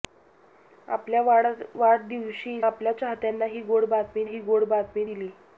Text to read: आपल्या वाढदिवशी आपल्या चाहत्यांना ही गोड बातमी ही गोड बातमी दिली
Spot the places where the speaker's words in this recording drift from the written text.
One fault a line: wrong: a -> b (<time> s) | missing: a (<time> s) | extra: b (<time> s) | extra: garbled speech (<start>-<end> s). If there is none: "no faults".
no faults